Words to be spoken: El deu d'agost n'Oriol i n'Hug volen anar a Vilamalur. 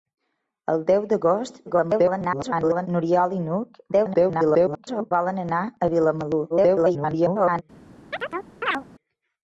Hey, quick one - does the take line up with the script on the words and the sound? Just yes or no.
no